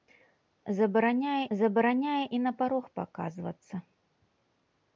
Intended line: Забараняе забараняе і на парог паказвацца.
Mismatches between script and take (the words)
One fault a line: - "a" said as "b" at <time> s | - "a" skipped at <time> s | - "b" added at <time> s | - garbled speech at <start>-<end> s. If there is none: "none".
none